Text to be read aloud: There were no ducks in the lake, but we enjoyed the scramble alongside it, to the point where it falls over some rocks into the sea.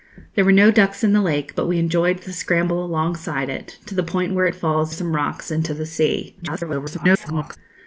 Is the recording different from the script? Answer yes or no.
yes